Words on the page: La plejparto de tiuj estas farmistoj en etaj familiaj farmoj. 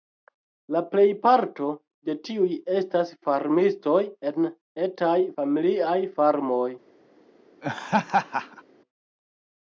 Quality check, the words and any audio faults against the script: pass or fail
fail